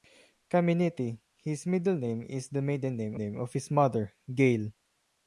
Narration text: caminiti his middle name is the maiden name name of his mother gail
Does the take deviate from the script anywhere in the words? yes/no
no